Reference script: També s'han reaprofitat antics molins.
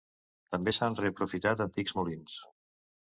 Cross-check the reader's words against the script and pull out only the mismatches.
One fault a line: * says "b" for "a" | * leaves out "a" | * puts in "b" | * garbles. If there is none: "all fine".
all fine